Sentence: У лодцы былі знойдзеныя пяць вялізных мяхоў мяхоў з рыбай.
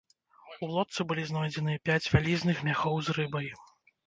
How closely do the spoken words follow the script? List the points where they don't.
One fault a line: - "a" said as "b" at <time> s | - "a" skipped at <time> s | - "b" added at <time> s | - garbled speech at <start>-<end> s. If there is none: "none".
- "мяхоў" skipped at 3.0 s